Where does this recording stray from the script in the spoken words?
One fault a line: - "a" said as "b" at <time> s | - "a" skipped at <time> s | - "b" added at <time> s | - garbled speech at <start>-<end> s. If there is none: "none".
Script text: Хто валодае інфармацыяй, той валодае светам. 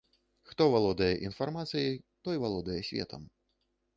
none